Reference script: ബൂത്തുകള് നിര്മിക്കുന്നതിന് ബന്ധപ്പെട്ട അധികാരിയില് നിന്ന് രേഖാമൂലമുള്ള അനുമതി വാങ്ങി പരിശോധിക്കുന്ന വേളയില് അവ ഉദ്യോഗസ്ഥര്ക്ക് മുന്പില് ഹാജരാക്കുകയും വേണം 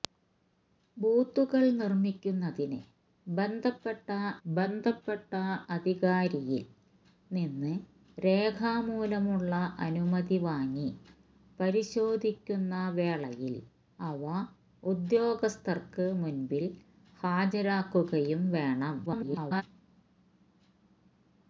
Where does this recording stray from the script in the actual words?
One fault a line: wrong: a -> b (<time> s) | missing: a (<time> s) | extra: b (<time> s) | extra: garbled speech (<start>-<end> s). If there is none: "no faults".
extra: ബന്ധപ്പെട്ട (4.5 s)
extra: garbled speech (19.1-19.6 s)